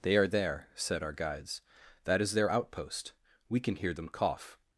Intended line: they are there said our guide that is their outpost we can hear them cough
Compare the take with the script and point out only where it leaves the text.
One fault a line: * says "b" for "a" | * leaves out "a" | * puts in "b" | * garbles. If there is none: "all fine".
* says "guides" for "guide"